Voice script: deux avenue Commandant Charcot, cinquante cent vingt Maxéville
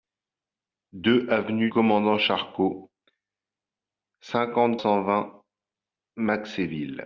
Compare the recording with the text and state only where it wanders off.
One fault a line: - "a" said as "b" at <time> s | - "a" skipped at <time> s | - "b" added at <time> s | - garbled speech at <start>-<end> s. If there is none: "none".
none